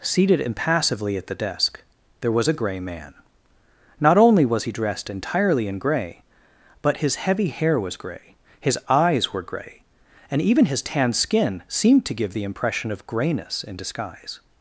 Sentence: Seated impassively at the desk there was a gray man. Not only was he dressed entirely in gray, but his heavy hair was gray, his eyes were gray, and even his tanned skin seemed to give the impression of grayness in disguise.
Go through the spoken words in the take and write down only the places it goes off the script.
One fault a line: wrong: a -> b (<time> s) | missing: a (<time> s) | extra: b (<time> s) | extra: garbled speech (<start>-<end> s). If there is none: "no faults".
no faults